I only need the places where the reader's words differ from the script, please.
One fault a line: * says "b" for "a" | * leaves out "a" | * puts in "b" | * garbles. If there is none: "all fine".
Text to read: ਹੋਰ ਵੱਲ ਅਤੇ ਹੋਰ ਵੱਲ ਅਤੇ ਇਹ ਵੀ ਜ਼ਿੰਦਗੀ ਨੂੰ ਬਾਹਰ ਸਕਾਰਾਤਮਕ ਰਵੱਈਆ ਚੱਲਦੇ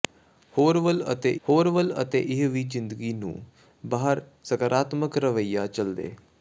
all fine